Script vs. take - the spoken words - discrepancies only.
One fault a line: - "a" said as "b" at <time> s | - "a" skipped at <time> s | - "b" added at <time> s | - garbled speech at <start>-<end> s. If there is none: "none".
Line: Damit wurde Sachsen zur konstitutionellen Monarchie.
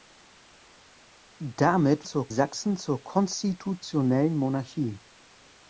- "wurde" said as "zur" at 2.0 s